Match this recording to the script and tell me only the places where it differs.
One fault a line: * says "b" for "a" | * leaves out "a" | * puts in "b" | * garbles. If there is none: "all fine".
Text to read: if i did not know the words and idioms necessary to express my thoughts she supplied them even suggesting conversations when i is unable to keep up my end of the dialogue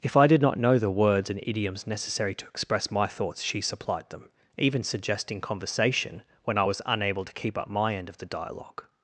* says "conversation" for "conversations"
* says "was" for "is"